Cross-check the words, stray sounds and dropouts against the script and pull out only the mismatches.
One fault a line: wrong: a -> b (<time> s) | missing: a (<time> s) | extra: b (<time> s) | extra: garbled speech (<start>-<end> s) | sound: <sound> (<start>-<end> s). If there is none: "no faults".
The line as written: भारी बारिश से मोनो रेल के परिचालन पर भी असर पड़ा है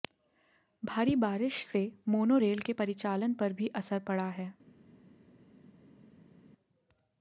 no faults